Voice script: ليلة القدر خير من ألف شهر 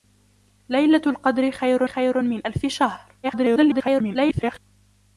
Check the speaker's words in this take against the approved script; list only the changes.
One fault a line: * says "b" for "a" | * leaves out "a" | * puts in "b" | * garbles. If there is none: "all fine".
* puts in "خير"
* garbles